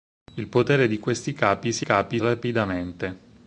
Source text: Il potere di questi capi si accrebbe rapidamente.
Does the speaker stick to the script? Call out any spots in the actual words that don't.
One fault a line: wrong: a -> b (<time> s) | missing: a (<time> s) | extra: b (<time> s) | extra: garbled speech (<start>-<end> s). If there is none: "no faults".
wrong: accrebbe -> capi (1.8 s)